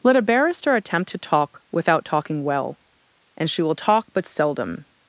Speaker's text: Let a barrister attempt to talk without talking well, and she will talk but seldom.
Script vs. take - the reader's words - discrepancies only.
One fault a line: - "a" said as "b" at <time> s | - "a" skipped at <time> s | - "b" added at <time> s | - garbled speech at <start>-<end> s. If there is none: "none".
none